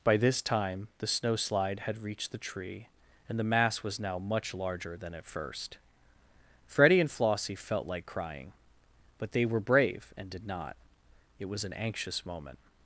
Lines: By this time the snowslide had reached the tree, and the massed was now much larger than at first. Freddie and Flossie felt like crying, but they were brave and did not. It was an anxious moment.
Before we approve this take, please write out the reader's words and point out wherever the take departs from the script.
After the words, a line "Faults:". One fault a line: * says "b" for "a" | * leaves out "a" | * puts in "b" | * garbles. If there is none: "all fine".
By this time the snowslide had reached the tree, and the mass was now much larger than at first. Freddie and Flossie felt like crying, but they were brave and did not. It was an anxious moment.
Faults:
* says "mass" for "massed"